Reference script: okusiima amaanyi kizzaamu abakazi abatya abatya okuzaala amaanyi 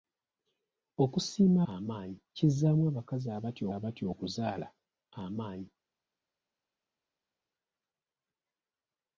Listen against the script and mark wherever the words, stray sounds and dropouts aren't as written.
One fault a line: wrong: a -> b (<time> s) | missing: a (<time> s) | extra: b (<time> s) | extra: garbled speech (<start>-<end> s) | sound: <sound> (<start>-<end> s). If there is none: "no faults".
no faults